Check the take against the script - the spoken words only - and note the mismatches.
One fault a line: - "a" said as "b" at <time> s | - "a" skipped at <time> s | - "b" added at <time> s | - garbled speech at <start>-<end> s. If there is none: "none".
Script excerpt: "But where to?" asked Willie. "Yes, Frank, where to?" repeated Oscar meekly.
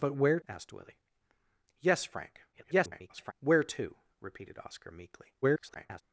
- "to" skipped at 0.4 s
- garbled speech at 2.5-3.3 s
- garbled speech at 5.4-6.0 s